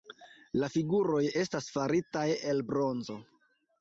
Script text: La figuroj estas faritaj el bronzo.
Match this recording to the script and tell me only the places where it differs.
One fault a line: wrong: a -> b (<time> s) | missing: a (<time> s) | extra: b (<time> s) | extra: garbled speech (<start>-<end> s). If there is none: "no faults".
no faults